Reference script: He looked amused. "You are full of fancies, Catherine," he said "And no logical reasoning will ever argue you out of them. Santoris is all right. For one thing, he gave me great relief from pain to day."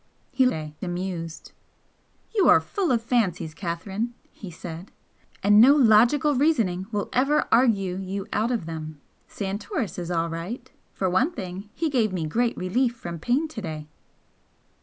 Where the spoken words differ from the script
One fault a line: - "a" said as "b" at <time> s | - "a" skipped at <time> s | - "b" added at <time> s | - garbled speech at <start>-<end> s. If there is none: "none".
- "looked" said as "day" at 0.5 s